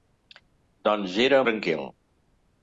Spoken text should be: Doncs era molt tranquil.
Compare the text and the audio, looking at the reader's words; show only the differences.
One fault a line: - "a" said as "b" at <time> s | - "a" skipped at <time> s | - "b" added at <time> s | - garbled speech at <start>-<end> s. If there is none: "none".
- "molt" skipped at 1.4 s